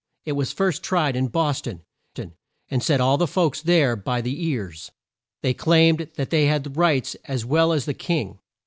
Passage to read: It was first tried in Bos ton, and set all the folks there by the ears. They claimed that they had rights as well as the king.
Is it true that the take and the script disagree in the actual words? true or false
true